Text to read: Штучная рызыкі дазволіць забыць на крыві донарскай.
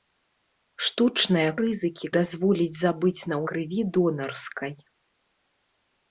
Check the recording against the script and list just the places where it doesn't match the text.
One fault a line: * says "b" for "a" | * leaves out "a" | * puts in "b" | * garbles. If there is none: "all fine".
all fine